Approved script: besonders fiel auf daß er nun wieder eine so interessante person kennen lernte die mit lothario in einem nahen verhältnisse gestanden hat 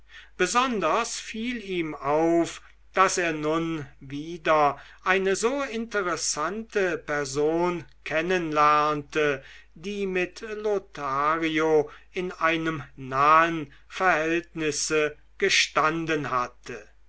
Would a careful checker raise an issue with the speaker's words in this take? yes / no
yes